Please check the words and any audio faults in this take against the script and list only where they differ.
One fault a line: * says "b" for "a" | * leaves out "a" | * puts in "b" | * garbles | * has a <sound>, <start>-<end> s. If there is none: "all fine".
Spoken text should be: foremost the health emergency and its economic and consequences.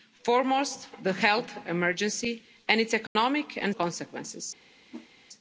* has a dropout, 3.1-3.2 s
* has a whoosh, 4.9-5.1 s